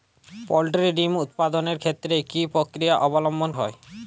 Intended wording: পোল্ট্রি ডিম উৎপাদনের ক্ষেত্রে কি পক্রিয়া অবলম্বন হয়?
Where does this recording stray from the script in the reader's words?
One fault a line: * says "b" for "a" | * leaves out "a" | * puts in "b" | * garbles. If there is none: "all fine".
all fine